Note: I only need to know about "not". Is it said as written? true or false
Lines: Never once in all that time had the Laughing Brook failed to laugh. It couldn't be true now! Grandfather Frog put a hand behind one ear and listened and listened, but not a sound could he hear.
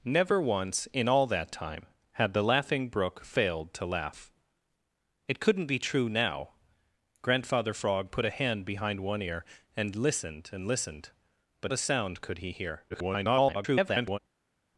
false